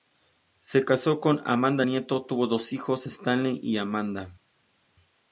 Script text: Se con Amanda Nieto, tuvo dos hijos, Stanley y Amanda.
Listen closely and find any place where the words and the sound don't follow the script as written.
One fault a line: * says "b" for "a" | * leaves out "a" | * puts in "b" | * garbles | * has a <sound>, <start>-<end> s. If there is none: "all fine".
* puts in "casó"